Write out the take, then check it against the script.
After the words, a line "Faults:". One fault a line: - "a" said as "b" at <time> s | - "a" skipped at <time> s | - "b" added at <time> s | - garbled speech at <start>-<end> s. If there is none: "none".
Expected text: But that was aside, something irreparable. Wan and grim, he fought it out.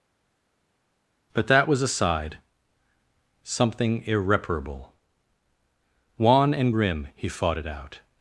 But that was aside, something irreparable. Wan and grim, he fought it out.
Faults:
none